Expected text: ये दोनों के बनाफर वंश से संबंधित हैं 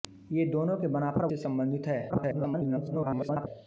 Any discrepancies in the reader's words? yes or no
yes